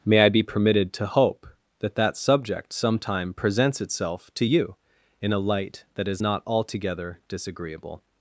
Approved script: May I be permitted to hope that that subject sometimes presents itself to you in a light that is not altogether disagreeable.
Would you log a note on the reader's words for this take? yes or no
yes